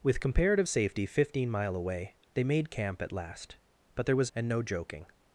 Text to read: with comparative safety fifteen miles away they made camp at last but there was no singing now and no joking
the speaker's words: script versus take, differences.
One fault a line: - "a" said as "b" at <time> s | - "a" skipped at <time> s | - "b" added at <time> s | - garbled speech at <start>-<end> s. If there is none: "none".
- "no singing now" skipped at 4.3 s